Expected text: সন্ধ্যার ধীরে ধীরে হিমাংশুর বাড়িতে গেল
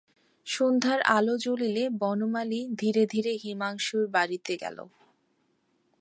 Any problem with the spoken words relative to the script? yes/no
yes